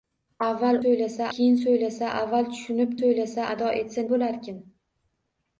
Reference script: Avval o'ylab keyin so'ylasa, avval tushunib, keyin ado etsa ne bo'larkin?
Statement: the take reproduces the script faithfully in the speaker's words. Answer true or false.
false